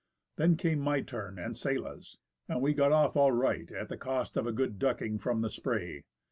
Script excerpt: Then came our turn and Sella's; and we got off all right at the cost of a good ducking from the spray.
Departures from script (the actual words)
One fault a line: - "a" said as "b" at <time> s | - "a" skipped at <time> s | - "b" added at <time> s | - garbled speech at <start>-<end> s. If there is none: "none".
- "our" said as "my" at 0.8 s